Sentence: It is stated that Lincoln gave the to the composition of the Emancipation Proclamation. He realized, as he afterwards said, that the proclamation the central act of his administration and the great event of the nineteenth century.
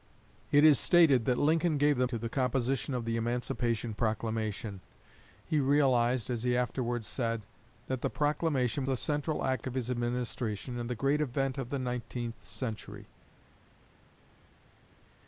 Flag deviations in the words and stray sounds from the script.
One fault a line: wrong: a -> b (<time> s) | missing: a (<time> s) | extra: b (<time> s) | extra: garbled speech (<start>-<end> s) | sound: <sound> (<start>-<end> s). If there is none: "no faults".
no faults